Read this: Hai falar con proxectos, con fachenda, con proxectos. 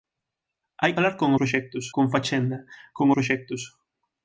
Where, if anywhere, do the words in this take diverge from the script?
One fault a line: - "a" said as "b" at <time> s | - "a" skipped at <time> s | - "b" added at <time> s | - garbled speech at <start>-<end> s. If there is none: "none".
none